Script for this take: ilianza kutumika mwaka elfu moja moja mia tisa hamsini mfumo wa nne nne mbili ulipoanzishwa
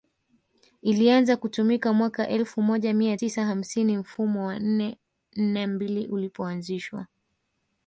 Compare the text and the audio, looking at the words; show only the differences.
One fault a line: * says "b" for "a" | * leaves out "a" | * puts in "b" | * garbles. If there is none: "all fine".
* leaves out "moja"